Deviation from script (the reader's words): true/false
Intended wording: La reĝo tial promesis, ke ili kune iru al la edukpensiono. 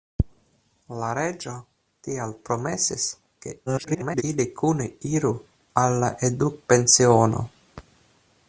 true